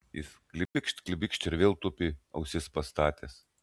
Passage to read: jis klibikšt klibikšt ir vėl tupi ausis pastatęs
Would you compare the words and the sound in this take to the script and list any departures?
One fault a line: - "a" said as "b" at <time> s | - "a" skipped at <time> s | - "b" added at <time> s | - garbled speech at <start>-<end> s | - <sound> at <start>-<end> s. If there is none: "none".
- dropout at 0.7-0.7 s